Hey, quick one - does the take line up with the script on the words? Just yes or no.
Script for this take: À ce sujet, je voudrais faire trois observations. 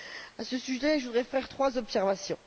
yes